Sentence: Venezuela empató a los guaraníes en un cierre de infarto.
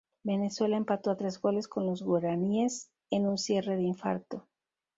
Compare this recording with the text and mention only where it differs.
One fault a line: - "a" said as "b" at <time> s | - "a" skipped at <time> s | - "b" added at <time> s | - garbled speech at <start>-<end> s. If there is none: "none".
- "tres goles con" added at 1.2 s